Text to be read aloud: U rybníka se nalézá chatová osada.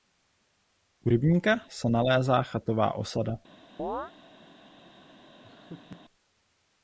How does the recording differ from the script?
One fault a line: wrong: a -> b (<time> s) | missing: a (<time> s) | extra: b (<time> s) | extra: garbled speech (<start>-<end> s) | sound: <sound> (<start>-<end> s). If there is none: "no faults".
sound: chirp (3.8-4.1 s)
sound: laugh (5.4-6.0 s)